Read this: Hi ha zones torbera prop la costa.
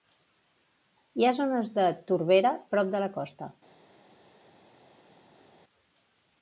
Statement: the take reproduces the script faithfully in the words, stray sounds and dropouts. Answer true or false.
false